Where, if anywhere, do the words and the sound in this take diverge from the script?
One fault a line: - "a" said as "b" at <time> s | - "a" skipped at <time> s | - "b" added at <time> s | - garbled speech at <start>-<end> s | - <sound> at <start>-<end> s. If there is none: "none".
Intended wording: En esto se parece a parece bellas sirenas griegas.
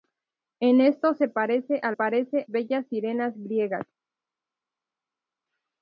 none